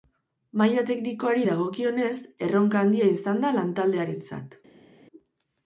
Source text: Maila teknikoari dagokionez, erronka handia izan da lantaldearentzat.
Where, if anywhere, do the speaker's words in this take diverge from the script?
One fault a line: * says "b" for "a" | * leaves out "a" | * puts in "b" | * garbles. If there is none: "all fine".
all fine